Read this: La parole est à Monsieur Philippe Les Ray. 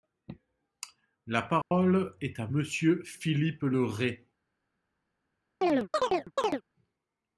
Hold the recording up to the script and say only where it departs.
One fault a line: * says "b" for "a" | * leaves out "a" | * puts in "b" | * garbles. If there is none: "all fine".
* says "Le" for "Les"